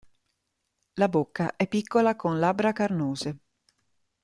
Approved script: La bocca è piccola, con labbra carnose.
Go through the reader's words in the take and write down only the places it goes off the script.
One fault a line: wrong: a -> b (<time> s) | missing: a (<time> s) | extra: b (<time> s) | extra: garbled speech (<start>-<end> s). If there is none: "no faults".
no faults